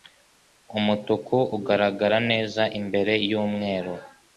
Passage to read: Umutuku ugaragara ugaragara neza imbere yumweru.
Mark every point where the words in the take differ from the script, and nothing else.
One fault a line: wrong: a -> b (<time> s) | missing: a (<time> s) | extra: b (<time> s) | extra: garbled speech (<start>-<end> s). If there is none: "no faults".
missing: ugaragara (2.2 s)